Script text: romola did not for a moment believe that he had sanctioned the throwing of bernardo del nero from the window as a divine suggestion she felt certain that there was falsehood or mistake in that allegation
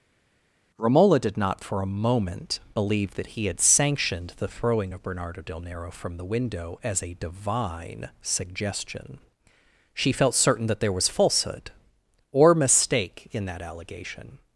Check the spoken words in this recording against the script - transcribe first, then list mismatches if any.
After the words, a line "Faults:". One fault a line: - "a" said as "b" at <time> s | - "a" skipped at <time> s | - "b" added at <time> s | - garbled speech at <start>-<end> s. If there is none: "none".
romola did not for a moment believe that he had sanctioned the throwing of bernardo del nero from the window as a divine suggestion she felt certain that there was falsehood or mistake in that allegation
Faults:
none